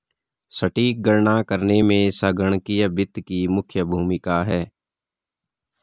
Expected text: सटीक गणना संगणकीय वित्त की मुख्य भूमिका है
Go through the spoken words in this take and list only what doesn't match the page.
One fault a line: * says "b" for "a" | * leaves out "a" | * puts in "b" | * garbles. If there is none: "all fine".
* puts in "करने में"